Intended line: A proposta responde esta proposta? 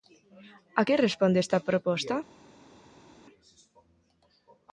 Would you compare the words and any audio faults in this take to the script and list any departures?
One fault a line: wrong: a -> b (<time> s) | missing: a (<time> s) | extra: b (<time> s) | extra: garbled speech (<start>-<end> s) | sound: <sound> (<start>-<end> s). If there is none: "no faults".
wrong: proposta -> que (0.9 s)